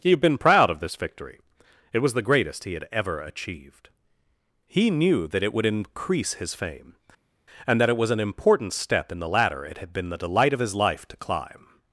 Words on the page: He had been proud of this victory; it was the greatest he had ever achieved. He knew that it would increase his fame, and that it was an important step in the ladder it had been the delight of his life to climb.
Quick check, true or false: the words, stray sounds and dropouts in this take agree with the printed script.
true